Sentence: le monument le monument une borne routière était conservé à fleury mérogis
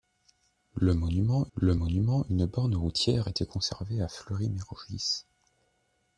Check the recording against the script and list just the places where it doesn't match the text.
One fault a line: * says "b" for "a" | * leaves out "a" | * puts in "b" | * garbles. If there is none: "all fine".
all fine